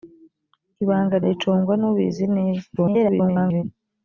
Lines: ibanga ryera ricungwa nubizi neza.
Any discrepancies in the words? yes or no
yes